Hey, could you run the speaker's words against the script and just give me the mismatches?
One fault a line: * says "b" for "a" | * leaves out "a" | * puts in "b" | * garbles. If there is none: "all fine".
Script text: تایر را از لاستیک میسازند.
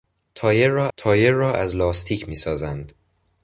* puts in "تایر را"